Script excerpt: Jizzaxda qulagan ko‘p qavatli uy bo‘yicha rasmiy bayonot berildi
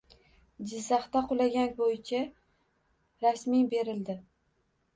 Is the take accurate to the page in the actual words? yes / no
no